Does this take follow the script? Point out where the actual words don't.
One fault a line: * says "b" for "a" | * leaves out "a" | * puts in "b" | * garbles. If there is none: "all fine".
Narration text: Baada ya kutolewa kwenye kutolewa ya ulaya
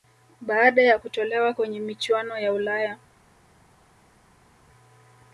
* says "michuano" for "kutolewa"